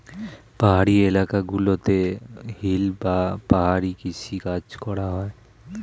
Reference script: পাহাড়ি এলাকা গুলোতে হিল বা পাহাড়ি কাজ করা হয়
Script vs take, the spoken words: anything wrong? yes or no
yes